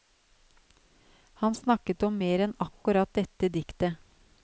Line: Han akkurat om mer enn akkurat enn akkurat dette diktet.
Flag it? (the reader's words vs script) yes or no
yes